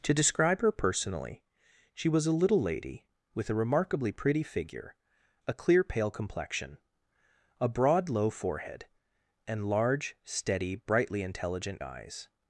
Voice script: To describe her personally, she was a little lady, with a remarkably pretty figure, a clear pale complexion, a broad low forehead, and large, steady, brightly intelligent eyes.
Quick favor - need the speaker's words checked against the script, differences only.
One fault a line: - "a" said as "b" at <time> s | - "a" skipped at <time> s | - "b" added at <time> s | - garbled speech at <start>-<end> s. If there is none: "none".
none